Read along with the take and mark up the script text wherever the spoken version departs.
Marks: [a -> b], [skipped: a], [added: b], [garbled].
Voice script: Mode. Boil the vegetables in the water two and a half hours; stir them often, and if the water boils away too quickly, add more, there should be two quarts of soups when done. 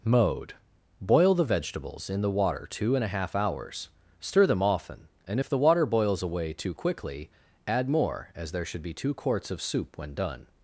Mode. Boil the vegetables in the water two and a half hours; stir them often, and if the water boils away too quickly, add more, [added: as] there should be two quarts of [soups -> soup] when done.